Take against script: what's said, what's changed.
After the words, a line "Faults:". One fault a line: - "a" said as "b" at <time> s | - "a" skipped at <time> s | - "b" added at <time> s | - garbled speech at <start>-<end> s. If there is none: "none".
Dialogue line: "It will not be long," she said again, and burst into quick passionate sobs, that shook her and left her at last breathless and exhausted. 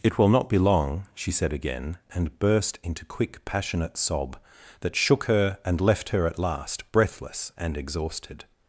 "It will not be long," she said again, and burst into quick passionate sob, that shook her and left her at last breathless and exhausted.
Faults:
- "sobs" said as "sob" at 4.0 s